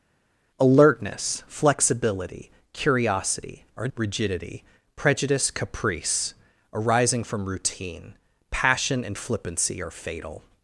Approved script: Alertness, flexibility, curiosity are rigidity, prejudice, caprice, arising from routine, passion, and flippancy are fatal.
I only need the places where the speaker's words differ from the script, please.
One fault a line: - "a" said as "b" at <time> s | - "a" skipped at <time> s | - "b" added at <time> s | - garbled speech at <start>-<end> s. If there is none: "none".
none